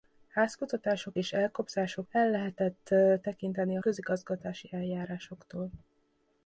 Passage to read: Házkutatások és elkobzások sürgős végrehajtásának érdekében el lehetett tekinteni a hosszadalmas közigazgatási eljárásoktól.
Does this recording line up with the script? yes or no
no